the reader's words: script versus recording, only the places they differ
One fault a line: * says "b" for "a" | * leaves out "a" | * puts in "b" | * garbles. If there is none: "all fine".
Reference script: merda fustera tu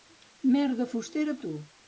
all fine